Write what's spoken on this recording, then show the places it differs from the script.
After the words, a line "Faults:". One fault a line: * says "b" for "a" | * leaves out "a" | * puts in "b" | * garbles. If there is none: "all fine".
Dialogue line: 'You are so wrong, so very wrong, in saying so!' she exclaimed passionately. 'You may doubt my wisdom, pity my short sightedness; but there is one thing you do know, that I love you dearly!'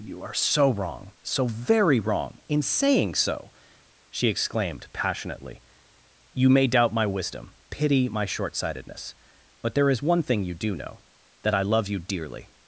'You are so wrong, so very wrong, in saying so!' she exclaimed passionately. 'You may doubt my wisdom, pity my short sightedness; but there is one thing you do know, that I love you dearly!'
Faults:
all fine